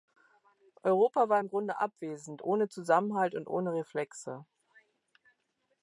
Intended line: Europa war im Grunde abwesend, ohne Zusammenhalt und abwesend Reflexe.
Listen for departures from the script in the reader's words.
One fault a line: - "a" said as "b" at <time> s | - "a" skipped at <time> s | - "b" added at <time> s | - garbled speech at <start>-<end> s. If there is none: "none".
- "abwesend" said as "ohne" at 3.5 s